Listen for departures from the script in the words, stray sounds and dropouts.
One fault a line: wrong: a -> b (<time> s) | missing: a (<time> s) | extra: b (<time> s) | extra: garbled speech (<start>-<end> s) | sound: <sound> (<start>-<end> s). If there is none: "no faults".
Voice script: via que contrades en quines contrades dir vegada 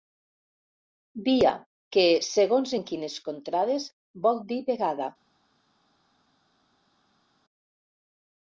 wrong: contrades -> segons (2.3 s)
extra: vol (4.3 s)